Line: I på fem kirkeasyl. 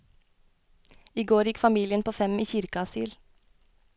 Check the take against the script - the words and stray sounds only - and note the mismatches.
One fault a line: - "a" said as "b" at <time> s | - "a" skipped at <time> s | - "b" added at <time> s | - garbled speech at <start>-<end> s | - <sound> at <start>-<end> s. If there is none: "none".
- "går gikk familien" added at 1.3 s
- "i" added at 2.4 s